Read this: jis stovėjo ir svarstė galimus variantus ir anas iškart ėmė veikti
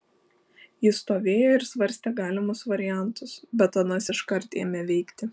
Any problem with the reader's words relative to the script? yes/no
yes